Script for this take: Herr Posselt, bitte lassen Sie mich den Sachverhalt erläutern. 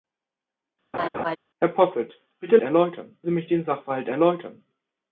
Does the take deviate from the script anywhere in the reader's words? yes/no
yes